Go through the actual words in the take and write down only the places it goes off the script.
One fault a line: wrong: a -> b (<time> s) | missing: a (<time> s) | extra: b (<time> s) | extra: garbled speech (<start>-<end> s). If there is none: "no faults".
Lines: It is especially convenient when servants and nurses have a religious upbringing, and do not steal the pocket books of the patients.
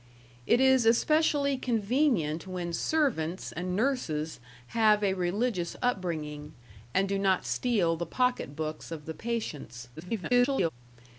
extra: garbled speech (10.0-10.7 s)